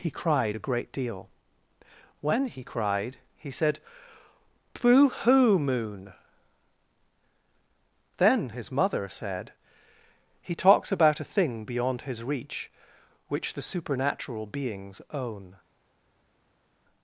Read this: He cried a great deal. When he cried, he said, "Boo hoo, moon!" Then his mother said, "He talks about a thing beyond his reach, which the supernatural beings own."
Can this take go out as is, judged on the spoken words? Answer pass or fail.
pass